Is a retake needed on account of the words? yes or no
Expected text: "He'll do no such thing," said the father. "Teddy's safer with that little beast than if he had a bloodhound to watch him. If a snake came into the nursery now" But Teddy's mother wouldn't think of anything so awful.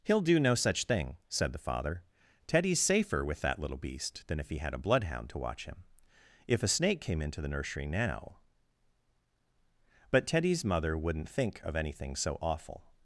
no